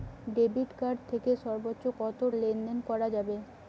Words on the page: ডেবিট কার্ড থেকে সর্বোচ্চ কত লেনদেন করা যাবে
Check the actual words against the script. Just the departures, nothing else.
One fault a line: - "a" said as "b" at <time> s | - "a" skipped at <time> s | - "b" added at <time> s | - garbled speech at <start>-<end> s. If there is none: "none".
none